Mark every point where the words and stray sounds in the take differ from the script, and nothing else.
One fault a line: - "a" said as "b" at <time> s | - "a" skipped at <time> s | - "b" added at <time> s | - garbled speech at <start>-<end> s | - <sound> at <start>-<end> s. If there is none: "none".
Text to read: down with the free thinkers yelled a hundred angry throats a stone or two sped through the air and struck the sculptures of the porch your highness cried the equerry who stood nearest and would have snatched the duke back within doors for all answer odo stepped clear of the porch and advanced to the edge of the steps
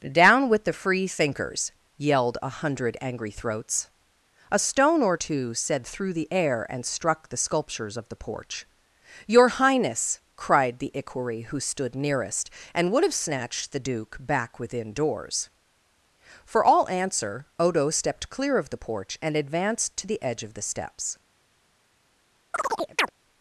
- "sped" said as "said" at 5.5 s
- chirp at 22.5-23.1 s